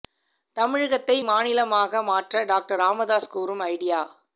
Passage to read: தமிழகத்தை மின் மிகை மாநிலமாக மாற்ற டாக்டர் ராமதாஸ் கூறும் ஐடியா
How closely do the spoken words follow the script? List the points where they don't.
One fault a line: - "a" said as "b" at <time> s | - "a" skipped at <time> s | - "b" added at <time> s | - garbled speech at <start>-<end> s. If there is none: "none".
- "மின் மிகை" skipped at 1.2 s